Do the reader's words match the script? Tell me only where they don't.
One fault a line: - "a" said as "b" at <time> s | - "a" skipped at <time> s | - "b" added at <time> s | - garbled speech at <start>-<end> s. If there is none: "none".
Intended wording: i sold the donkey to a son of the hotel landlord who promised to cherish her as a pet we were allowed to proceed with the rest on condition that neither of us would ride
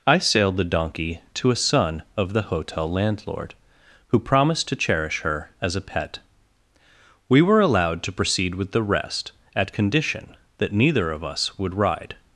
- "sold" said as "sailed" at 0.2 s
- "on" said as "at" at 9.6 s